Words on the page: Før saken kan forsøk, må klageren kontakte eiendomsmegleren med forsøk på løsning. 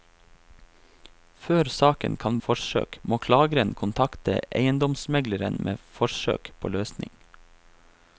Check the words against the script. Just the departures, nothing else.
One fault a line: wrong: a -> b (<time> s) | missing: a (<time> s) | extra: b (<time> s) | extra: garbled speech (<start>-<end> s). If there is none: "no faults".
no faults